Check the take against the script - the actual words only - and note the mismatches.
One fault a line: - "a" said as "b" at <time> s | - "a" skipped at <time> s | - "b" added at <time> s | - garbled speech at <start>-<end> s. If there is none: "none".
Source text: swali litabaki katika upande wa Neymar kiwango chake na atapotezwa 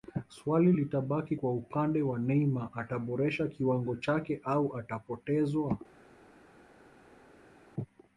- "katika" said as "kwa" at 1.3 s
- "ataboresha" added at 2.7 s
- "na" said as "au" at 4.4 s